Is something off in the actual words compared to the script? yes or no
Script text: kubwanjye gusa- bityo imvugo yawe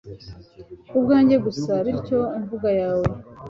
no